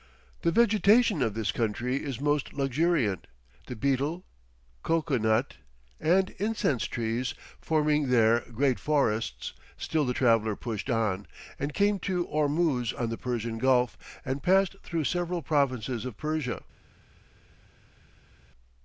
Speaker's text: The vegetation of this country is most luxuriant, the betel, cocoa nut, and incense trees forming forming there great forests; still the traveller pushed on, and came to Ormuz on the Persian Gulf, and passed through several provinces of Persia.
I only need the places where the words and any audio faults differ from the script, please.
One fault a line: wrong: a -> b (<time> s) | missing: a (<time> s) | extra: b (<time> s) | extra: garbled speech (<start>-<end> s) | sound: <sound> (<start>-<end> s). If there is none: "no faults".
missing: forming (8.1 s)